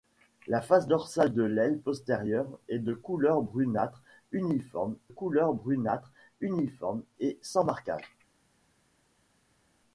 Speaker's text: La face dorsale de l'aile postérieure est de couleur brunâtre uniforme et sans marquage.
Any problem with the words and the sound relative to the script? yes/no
yes